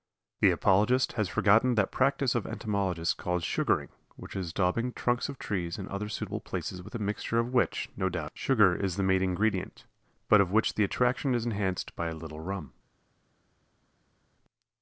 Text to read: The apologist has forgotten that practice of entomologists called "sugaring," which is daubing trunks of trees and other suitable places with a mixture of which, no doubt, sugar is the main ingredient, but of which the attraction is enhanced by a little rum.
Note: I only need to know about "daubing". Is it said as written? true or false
true